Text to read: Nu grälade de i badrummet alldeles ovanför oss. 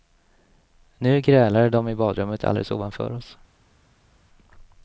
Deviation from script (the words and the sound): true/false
false